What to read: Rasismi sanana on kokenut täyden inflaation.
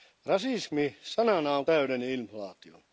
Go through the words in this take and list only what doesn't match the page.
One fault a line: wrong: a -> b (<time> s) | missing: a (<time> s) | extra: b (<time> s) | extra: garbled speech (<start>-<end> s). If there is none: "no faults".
missing: kokenut (1.6 s)